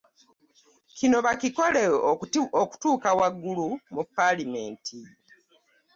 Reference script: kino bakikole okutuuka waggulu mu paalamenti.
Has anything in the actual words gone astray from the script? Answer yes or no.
no